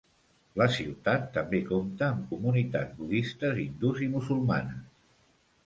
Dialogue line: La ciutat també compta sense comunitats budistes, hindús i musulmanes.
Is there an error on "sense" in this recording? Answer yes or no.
yes